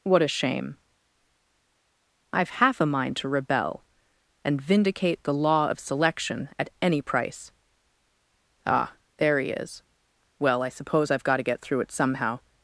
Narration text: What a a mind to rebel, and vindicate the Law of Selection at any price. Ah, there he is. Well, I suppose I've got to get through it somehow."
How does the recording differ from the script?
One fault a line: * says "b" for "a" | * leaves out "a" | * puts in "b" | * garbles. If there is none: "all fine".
* puts in "shame I've half"